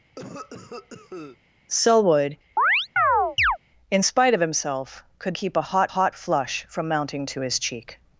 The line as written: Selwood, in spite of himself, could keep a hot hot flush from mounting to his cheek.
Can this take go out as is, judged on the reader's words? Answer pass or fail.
pass